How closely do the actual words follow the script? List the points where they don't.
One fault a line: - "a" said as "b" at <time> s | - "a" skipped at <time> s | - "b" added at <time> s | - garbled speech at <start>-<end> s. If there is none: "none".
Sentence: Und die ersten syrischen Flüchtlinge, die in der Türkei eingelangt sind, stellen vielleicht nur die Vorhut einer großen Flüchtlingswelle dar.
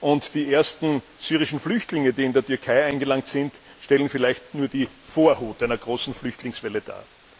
none